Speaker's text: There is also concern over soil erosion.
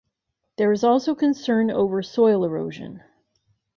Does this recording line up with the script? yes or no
yes